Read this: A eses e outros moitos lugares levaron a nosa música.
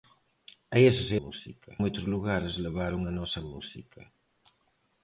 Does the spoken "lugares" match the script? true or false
true